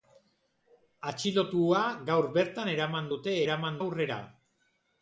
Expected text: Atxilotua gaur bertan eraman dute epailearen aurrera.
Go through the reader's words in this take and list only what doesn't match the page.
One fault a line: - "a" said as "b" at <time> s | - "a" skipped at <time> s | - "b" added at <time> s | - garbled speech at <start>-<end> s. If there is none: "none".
- "epailearen" said as "eraman" at 3.4 s